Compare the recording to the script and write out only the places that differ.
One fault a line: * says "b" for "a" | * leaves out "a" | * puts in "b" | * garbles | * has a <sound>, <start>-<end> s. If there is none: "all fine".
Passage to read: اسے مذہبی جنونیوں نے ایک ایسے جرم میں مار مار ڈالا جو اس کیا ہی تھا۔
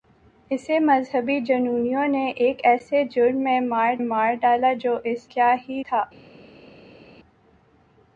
all fine